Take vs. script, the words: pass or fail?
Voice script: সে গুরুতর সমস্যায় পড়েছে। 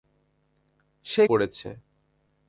fail